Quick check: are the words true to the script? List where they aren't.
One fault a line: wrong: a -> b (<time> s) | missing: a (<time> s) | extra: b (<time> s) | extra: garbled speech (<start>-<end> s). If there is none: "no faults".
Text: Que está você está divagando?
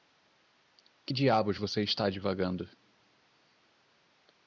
wrong: está -> diabos (1.1 s)